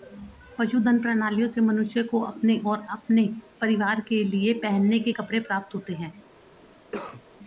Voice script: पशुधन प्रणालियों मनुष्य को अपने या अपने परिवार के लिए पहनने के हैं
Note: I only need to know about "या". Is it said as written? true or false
false